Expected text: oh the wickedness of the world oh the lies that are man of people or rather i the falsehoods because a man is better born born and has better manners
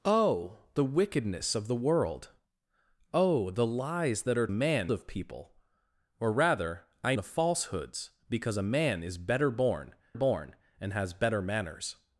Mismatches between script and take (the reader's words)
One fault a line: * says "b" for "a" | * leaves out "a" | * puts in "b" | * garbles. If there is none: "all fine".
all fine